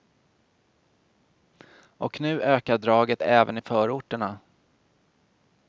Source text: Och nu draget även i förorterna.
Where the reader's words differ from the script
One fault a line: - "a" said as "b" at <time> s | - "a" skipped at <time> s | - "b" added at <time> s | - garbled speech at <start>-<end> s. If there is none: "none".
- "ökar" added at 2.4 s